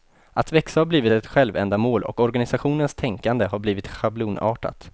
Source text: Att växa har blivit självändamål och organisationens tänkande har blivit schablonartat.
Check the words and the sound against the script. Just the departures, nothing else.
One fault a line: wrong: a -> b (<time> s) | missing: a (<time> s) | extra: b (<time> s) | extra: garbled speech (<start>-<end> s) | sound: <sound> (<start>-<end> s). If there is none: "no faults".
extra: ett (1.1 s)